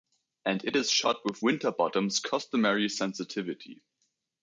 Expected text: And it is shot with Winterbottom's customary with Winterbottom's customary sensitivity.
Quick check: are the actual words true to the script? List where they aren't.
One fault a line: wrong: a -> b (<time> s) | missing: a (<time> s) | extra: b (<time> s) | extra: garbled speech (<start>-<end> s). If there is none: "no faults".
missing: with Winterbottom's customary (2.9 s)